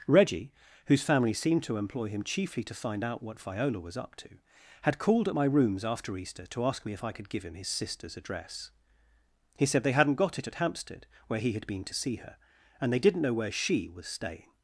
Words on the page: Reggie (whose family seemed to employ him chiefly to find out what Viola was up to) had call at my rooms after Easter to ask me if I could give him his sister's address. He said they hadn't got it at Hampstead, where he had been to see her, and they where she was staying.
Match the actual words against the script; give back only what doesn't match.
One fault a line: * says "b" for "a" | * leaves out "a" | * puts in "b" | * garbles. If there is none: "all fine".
* says "called" for "call"
* puts in "didn't know"